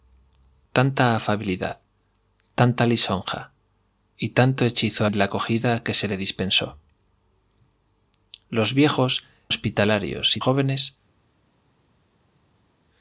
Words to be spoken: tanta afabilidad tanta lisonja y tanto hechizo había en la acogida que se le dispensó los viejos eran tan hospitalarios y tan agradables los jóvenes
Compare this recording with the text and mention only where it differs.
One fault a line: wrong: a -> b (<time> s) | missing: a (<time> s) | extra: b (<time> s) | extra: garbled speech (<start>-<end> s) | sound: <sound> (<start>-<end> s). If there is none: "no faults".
missing: había (5.0 s)
missing: eran tan (9.3 s)
missing: tan agradables los (10.4 s)